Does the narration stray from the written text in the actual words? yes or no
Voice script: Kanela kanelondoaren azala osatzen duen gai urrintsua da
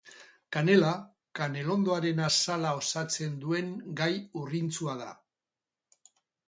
no